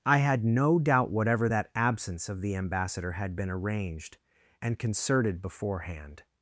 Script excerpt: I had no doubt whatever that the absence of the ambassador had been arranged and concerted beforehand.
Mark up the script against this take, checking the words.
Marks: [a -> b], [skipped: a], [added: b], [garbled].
I had no doubt whatever that [skipped: the] absence of the ambassador had been arranged and concerted beforehand.